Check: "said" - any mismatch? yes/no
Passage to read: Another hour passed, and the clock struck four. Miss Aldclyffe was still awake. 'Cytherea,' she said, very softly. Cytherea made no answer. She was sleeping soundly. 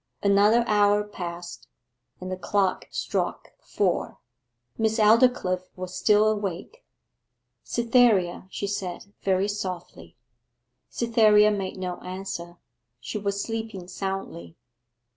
no